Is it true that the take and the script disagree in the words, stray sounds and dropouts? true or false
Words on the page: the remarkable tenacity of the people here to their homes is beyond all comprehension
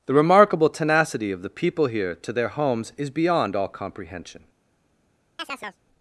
true